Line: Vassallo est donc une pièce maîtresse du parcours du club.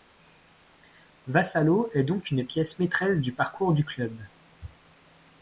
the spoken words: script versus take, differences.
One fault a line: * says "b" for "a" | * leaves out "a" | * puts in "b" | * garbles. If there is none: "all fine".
all fine